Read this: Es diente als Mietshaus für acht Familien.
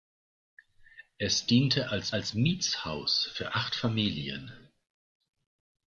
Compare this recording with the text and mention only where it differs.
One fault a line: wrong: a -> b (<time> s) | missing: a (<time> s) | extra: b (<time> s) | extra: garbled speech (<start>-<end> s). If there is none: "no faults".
extra: als (2.1 s)